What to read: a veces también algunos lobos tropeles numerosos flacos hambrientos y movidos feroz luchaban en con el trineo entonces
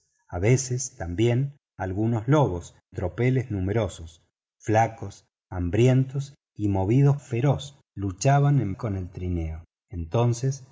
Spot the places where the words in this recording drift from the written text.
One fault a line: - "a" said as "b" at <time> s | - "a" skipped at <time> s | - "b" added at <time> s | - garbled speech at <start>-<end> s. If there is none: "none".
none